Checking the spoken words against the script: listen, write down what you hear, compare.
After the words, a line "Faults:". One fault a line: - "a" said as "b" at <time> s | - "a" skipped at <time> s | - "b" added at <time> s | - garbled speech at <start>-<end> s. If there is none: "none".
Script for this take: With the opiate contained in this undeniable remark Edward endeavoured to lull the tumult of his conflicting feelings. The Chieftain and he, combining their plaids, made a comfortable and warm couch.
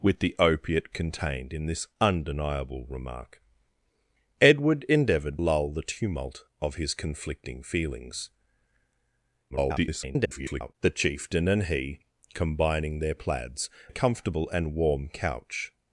With the opiate contained in this undeniable remark Edward endeavoured lull the tumult of his conflicting feelings. [garbled] The Chieftain and he, combining their plaids, a comfortable and warm couch.
Faults:
- "to" skipped at 5.4 s
- garbled speech at 9.5-10.8 s
- "made" skipped at 13.7 s